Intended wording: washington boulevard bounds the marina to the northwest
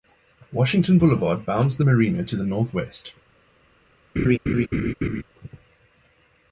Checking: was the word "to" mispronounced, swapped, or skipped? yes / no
no